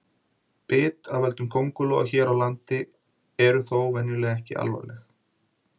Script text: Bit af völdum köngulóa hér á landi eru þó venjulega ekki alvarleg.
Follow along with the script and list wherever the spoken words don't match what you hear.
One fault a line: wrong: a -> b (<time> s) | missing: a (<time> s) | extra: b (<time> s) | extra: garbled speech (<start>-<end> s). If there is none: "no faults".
no faults